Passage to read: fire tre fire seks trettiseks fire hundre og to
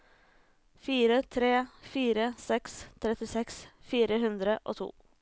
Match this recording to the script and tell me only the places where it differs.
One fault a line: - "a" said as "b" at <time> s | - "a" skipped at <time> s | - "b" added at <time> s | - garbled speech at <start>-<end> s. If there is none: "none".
none